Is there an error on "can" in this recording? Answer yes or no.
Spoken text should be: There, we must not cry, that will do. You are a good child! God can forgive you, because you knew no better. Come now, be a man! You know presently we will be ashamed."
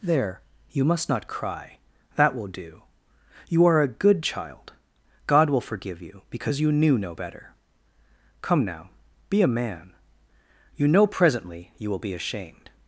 yes